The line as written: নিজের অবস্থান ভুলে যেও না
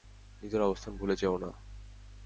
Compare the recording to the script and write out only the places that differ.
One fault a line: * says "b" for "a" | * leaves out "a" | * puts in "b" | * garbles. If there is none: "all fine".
all fine